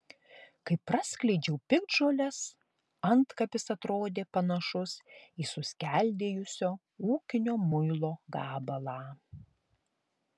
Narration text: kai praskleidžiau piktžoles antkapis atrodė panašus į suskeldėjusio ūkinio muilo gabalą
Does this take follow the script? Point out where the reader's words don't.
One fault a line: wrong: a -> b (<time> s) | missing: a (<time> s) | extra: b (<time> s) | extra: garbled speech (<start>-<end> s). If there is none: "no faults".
no faults